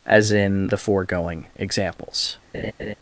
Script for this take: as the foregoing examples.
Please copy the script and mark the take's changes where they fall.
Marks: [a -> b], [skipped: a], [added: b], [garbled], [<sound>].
as [added: in] the foregoing examples. [laugh]